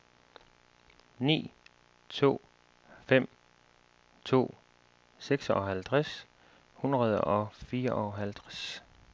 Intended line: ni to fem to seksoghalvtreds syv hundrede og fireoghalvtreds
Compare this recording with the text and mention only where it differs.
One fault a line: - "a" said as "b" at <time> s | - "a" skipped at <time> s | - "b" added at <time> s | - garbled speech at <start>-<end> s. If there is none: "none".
- "syv" skipped at 6.2 s